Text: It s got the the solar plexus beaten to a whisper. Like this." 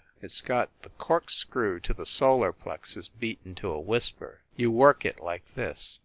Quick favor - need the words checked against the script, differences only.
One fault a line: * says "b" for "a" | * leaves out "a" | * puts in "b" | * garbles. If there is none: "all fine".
* puts in "corkscrew to"
* puts in "You work it"